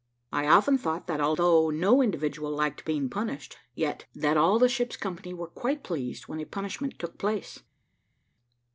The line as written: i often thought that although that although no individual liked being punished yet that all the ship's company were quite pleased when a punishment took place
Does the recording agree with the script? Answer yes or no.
no